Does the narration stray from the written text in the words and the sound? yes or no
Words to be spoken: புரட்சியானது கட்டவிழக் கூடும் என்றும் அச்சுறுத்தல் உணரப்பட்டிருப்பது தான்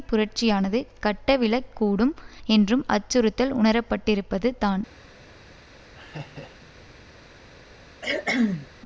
yes